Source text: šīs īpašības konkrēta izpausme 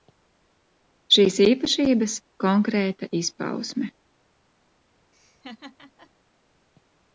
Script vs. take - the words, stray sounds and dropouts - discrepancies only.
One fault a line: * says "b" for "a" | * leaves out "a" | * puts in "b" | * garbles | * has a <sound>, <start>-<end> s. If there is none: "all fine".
* has a laugh, 5.1-6.1 s